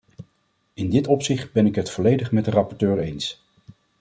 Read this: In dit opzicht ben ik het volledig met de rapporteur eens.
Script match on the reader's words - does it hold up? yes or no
yes